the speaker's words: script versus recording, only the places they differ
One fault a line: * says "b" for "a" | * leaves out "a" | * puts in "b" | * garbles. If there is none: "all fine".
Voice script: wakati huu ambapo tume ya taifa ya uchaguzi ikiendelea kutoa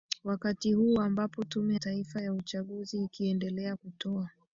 * leaves out "ya"